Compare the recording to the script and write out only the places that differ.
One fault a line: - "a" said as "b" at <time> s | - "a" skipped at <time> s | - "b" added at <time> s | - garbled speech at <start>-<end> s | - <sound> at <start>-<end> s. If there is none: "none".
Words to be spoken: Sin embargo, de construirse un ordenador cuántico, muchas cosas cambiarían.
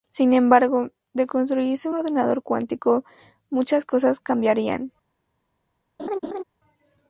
- "un" skipped at 1.9 s
- laugh at 6.0-6.4 s